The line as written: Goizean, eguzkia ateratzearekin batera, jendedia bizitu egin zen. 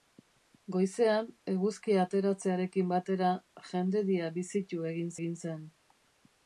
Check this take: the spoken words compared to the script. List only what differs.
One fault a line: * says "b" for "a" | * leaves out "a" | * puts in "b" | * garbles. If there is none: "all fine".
* puts in "egin"